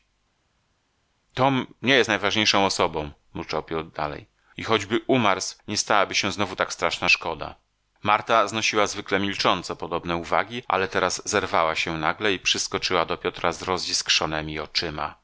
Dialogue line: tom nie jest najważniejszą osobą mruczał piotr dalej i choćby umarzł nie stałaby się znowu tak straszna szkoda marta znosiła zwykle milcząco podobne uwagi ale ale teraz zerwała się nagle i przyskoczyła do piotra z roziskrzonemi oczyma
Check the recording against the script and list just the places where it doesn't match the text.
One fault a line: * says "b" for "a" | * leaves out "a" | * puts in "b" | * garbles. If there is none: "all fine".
* leaves out "ale"